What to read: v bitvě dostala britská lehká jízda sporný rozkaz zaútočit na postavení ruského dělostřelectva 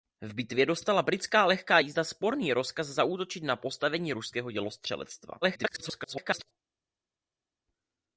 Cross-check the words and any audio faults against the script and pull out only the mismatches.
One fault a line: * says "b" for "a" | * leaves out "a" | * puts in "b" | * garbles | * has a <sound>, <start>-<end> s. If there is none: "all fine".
* garbles